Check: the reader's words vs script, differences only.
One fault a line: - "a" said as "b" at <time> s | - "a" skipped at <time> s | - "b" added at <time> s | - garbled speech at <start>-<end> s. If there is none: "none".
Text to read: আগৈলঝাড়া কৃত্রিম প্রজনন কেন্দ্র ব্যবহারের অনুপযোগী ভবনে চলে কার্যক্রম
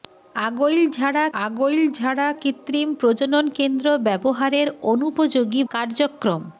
- "আগৈলঝাড়া" added at 1.4 s
- "ভবনে চলে" skipped at 5.6 s